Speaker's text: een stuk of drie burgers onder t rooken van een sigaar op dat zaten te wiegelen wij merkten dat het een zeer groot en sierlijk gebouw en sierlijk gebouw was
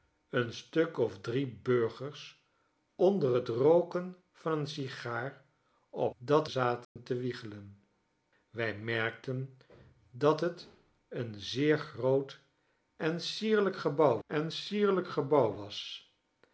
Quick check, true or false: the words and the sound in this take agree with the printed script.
false